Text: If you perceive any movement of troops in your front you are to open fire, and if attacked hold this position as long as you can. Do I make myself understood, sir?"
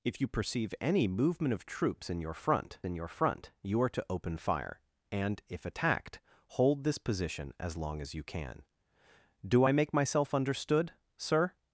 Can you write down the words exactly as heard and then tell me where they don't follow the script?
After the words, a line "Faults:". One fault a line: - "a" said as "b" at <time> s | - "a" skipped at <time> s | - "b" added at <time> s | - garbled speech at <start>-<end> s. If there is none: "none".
If you perceive any movement of troops in your front in your front you are to open fire, and if attacked hold this position as long as you can. Do I make myself understood, sir?"
Faults:
- "in your front" added at 2.8 s